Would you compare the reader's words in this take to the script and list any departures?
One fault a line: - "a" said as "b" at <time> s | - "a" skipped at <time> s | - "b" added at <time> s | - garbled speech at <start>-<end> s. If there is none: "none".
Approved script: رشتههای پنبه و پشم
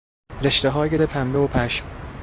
none